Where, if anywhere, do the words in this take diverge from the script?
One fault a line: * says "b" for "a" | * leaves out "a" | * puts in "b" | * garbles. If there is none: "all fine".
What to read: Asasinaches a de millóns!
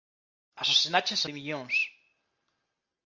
all fine